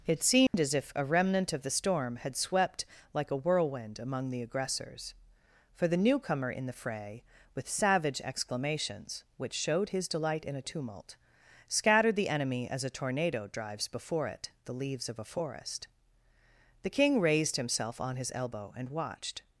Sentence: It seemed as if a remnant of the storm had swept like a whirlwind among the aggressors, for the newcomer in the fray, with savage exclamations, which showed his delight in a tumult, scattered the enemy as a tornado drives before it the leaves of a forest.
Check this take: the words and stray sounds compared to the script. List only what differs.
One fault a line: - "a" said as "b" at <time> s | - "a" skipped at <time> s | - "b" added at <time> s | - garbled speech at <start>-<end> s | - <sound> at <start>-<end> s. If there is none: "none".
- dropout at 0.5-0.5 s
- "The king raised himself on his elbow and watched" added at 16.8 s